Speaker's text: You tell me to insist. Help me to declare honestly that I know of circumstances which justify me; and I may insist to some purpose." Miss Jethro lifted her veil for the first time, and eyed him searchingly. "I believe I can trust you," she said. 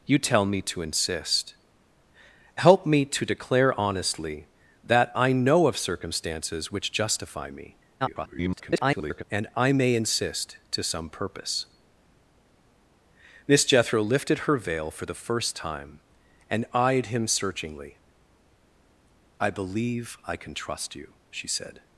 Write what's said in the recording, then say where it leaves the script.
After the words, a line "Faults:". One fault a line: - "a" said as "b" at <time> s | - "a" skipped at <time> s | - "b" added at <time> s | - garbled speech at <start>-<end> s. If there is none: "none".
You tell me to insist. Help me to declare honestly that I know of circumstances which justify me; [garbled] and I may insist to some purpose." Miss Jethro lifted her veil for the first time, and eyed him searchingly. "I believe I can trust you," she said.
Faults:
- garbled speech at 8.0-9.2 s